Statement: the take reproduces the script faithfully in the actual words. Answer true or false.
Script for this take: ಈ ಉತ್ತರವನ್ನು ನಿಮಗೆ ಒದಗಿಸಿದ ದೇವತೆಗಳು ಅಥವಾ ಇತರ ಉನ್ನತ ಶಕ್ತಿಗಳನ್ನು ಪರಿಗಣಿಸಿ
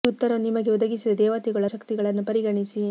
false